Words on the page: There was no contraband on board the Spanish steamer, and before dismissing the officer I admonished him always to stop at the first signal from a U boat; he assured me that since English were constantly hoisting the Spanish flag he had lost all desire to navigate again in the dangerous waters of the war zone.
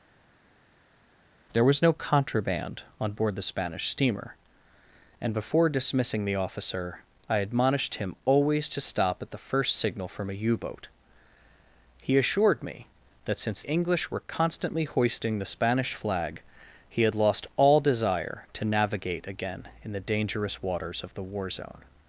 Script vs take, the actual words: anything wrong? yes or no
no